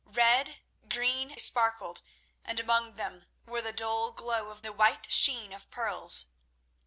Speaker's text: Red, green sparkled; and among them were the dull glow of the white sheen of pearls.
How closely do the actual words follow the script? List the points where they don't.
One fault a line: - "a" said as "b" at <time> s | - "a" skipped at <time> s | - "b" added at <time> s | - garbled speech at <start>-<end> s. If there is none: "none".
none